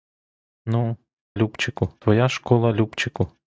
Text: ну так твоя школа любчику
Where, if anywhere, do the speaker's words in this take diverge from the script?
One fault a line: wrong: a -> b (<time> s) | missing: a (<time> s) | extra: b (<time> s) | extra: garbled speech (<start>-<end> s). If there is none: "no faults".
wrong: так -> любчику (1.3 s)